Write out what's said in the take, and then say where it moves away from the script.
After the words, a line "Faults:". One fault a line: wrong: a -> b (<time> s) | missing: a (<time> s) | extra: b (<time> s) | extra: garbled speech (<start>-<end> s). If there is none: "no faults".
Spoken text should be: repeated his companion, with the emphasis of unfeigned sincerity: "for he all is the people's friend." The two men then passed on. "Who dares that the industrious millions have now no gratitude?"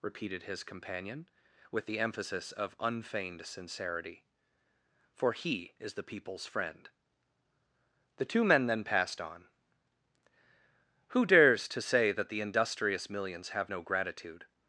repeated his companion, with the emphasis of unfeigned sincerity: "for he is the people's friend." The two men then passed on. "Who dares to say that the industrious millions have no gratitude?"
Faults:
missing: all (5.7 s)
extra: to say (11.7 s)
missing: now (13.7 s)